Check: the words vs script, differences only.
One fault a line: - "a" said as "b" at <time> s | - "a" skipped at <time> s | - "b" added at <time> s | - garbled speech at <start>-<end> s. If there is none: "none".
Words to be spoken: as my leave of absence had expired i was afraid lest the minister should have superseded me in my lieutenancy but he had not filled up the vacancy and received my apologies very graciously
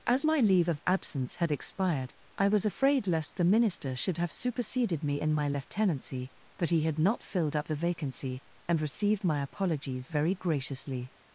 none